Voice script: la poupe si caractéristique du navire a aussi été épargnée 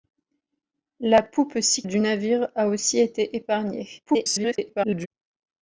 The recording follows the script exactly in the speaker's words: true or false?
false